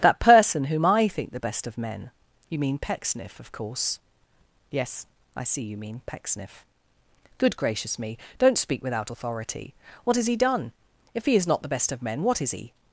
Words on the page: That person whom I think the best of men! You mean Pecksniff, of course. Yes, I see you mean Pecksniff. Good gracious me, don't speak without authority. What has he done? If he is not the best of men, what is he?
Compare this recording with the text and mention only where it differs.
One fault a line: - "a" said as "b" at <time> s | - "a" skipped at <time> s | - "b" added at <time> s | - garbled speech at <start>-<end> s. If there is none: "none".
none